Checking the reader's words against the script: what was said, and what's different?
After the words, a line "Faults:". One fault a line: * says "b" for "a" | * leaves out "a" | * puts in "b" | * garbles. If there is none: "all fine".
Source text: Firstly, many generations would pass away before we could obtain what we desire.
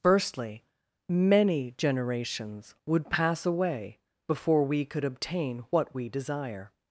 Firstly, many generations would pass away before we could obtain what we desire.
Faults:
all fine